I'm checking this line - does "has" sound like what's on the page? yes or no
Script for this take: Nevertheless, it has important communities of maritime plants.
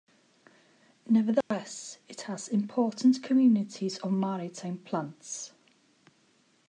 yes